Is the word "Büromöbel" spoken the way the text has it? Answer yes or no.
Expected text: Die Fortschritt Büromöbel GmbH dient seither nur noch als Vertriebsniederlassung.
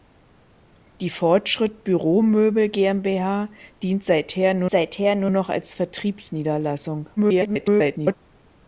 yes